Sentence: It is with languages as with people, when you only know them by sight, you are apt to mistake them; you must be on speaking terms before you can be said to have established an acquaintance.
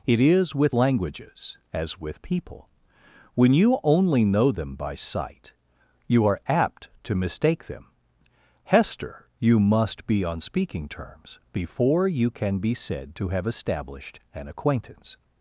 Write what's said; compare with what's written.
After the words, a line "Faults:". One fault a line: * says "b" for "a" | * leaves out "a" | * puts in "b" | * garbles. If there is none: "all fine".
It is with languages as with people, when you only know them by sight, you are apt to mistake them; hester you must be on speaking terms before you can be said to have established an acquaintance.
Faults:
* puts in "hester"